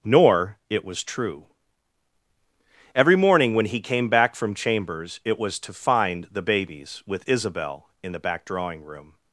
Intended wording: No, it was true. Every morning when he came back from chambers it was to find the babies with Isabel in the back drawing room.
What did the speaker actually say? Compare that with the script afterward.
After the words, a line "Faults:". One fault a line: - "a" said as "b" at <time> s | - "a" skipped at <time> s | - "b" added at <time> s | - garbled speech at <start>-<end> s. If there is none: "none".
Nor, it was true. Every morning when he came back from chambers it was to find the babies with Isabel in the back drawing room.
Faults:
- "No" said as "Nor" at 0.0 s